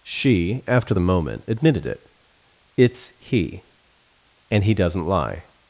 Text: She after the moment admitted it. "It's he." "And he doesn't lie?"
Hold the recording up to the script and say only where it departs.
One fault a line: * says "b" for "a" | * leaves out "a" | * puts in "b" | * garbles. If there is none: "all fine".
all fine